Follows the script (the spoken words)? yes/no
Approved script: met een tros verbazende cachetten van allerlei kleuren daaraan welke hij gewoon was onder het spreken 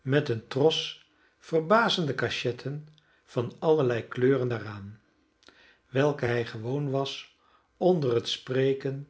yes